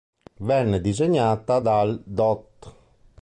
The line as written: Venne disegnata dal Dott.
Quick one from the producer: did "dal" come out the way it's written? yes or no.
yes